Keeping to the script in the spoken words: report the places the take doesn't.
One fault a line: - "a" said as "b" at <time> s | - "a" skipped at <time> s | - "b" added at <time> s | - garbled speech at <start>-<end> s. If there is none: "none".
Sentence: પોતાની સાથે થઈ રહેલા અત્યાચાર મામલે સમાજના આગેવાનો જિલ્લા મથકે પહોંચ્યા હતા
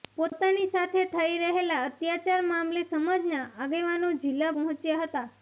- "મથકે" skipped at 4.5 s